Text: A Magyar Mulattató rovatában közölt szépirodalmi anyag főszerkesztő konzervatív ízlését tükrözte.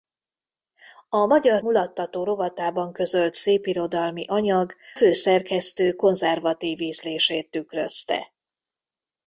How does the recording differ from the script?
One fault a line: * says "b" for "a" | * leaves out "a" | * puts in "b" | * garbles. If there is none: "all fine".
all fine